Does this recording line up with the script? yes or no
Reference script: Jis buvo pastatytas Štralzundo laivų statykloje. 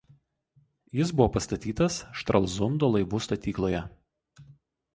yes